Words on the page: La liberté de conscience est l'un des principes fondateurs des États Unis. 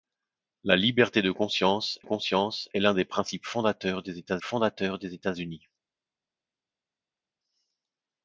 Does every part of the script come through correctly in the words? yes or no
no